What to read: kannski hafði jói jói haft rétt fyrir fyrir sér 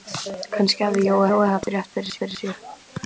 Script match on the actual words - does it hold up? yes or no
yes